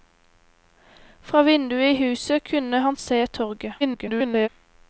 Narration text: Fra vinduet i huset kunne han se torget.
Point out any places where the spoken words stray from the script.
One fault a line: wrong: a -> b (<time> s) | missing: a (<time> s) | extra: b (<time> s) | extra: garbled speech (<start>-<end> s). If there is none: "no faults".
extra: garbled speech (3.8-4.5 s)